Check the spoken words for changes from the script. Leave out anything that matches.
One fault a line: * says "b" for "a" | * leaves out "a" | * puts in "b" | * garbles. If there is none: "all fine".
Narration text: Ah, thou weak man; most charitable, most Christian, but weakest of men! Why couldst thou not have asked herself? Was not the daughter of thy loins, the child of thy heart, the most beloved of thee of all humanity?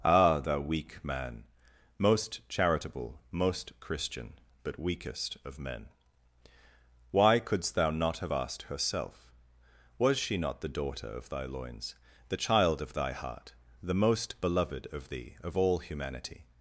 * puts in "she"